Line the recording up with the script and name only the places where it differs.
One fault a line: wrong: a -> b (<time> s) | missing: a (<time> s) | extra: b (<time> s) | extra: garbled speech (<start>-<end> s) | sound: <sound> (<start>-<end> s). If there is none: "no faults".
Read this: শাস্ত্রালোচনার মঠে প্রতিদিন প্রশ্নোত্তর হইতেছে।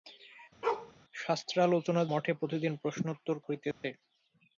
sound: bark (0.6-0.9 s)
sound: dropout (3.7-3.8 s)